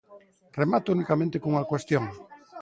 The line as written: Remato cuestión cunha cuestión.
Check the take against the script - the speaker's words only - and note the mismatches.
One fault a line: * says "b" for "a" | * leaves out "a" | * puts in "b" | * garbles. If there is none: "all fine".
* says "unicamente" for "cuestión"